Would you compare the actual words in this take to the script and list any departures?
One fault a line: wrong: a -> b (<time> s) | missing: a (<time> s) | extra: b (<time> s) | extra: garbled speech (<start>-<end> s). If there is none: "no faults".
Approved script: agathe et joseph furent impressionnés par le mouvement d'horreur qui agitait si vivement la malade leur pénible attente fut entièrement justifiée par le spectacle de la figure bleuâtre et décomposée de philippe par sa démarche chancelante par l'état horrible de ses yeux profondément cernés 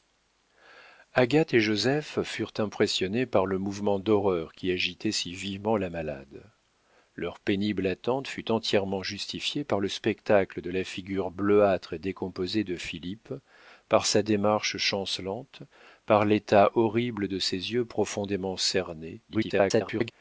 extra: garbled speech (19.3-20.1 s)